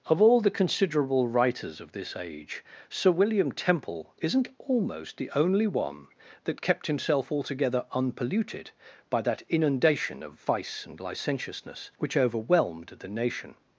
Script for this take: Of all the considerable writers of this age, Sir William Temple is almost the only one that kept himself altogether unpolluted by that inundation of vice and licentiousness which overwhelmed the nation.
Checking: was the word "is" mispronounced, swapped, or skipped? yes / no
yes